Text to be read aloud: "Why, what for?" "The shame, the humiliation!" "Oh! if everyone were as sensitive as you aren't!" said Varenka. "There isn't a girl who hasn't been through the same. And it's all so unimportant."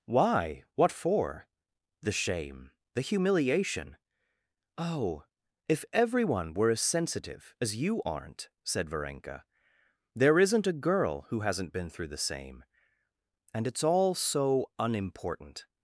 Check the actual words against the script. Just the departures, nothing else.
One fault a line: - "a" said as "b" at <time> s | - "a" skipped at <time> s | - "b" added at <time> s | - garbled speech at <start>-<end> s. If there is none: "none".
none